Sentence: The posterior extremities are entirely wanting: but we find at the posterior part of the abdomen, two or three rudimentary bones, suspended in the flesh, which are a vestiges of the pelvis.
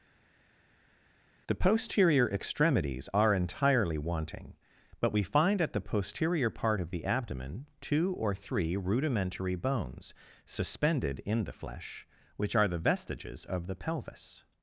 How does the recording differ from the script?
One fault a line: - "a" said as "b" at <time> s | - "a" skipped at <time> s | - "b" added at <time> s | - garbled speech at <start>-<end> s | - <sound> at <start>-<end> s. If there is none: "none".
- "a" said as "the" at 12.7 s